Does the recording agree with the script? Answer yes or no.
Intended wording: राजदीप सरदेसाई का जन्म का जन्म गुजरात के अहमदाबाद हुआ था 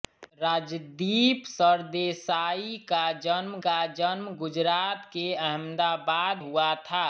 yes